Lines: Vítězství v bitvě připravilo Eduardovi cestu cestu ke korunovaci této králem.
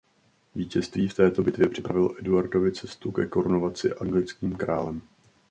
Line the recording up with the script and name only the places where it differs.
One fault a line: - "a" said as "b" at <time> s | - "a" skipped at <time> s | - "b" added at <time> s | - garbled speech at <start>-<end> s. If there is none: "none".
- "této" added at 1.1 s
- "cestu" skipped at 3.1 s
- "této" said as "anglickým" at 3.9 s